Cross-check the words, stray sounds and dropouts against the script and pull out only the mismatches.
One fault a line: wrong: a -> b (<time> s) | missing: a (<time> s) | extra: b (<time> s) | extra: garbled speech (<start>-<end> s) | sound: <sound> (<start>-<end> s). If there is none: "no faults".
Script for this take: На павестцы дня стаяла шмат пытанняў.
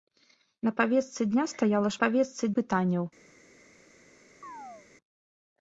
wrong: шмат -> павестцы (2.0 s)
sound: chirp (4.4-4.9 s)